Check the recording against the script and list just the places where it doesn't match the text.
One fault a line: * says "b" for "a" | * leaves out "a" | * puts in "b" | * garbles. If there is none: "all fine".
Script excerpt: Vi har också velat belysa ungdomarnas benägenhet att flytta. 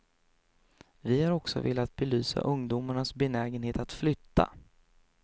all fine